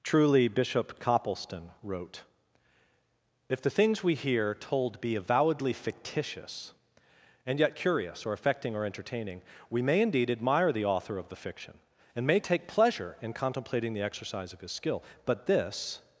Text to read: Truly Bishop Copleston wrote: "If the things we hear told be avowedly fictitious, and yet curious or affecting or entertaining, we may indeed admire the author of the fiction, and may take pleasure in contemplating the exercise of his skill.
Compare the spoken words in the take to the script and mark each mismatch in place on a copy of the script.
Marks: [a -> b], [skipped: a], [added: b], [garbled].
Truly Bishop Copleston wrote: "If the things we hear told be avowedly fictitious, and yet curious or affecting or entertaining, we may indeed admire the author of the fiction, and may take pleasure in contemplating the exercise of his skill. [added: But this]